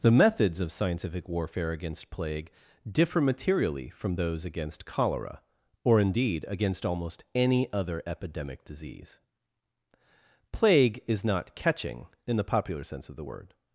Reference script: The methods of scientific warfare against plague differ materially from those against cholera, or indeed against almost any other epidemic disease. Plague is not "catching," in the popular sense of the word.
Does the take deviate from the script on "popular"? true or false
false